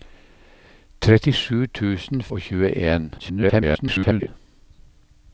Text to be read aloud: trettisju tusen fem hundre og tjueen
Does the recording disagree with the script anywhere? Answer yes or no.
yes